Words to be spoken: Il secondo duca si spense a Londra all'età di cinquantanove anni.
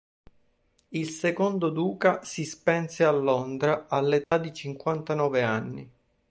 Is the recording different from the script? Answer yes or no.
no